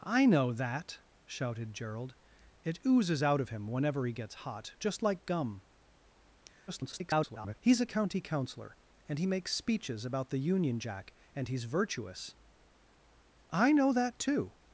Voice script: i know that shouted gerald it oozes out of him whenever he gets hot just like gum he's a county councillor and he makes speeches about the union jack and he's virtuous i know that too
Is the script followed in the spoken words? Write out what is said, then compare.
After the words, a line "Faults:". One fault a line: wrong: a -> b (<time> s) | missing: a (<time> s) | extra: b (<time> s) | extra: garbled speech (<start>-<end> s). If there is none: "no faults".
i know that shouted gerald it oozes out of him whenever he gets hot just like gum [garbled] he's a county councillor and he makes speeches about the union jack and he's virtuous i know that too
Faults:
extra: garbled speech (6.7-7.5 s)